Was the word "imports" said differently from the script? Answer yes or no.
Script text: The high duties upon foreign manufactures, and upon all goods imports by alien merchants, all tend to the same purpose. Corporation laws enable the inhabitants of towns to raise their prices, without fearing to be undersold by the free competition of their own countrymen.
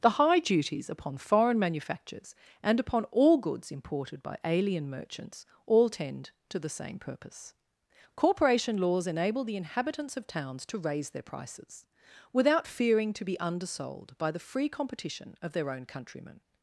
yes